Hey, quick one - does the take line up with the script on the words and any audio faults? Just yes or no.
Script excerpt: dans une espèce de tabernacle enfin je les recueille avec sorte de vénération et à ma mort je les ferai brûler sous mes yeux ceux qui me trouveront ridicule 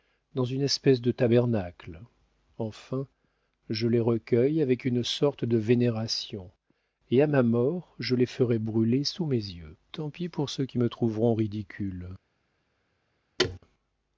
no